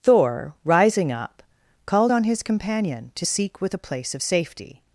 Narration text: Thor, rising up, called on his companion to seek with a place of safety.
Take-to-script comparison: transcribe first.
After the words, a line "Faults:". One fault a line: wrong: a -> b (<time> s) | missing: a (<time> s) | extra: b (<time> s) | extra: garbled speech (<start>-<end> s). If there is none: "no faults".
Thor, rising up, called on his companion to seek with a place of safety.
Faults:
no faults